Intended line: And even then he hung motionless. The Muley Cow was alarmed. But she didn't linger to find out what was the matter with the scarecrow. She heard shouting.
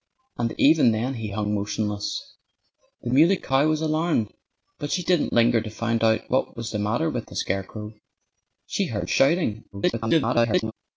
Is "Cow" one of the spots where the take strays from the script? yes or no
no